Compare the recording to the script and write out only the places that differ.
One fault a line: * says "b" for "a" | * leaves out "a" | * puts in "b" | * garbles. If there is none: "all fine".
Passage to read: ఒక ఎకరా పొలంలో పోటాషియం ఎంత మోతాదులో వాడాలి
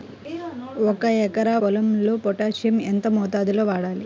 all fine